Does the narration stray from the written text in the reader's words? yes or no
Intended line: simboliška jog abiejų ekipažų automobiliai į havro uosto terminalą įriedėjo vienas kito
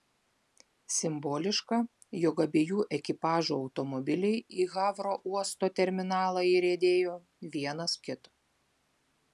no